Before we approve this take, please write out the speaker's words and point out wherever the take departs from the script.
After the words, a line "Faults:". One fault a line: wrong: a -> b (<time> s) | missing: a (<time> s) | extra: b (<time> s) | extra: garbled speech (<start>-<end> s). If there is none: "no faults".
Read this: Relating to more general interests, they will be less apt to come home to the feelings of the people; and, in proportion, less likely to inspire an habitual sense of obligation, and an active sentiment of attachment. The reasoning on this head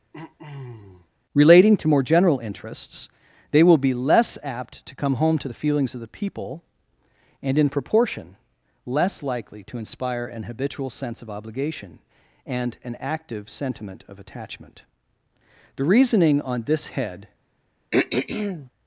Relating to more general interests, they will be less apt to come home to the feelings of the people; and, in proportion, less likely to inspire an habitual sense of obligation, and an active sentiment of attachment. The reasoning on this head
Faults:
no faults